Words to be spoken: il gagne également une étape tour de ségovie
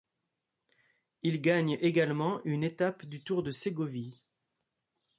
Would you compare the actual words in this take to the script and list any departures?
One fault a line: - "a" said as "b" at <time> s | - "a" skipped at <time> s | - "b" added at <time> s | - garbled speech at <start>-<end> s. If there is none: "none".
- "du" added at 3.0 s